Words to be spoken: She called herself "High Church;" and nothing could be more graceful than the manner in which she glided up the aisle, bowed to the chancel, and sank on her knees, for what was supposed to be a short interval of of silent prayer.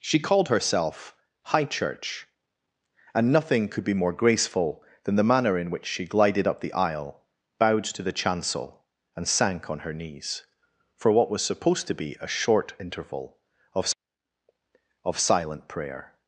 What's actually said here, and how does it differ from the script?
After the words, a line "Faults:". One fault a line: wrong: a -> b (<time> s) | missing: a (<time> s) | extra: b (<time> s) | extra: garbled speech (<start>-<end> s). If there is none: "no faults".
She called herself "High Church;" and nothing could be more graceful than the manner in which she glided up the aisle, bowed to the chancel, and sank on her knees, for what was supposed to be a short interval of of silent prayer.
Faults:
no faults